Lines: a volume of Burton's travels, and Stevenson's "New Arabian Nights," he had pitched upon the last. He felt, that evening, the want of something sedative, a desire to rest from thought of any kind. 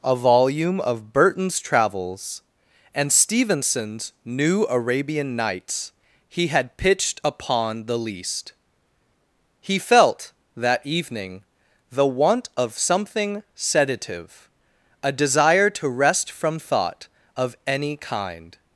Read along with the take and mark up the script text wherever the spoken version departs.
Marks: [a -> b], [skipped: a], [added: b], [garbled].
a volume of Burton's travels, and Stevenson's "New Arabian Nights," he had pitched upon the [last. -> least] He felt, that evening, the want of something sedative, a desire to rest from thought of any kind.